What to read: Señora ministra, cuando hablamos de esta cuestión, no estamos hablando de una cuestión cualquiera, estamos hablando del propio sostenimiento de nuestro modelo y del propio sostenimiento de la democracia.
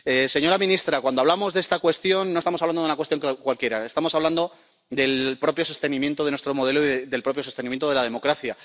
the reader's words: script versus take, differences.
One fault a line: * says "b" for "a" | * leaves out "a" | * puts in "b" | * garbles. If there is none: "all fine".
all fine